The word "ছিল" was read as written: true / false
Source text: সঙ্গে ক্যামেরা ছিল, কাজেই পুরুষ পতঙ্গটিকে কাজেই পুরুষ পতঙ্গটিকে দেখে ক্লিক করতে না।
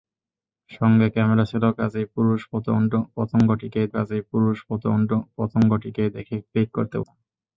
true